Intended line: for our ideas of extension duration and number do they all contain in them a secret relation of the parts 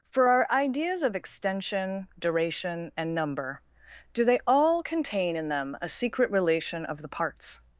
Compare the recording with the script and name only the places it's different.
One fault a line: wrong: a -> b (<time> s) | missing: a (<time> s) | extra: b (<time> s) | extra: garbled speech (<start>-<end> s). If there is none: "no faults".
no faults